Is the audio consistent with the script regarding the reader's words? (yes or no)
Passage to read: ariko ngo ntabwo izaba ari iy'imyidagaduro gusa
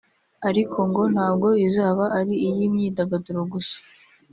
yes